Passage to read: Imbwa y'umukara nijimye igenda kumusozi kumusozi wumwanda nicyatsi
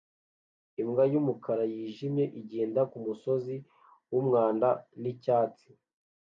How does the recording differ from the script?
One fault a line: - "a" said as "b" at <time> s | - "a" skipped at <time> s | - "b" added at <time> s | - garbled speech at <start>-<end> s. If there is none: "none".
- "kumusozi" skipped at 3.6 s